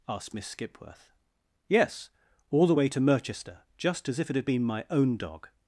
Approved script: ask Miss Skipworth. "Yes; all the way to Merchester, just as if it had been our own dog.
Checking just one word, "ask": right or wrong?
wrong